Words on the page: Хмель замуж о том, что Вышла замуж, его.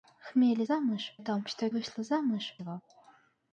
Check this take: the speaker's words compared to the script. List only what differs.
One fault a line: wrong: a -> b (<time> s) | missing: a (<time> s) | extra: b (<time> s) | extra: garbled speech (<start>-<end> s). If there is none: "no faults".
no faults